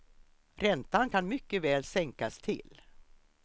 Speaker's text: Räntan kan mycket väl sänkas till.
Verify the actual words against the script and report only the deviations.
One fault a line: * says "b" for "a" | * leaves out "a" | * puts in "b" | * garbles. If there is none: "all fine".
all fine